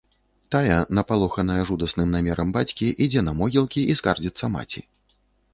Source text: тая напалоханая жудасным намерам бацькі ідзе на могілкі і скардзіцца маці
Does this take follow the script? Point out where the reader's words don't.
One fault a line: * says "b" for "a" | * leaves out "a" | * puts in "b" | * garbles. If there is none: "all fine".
all fine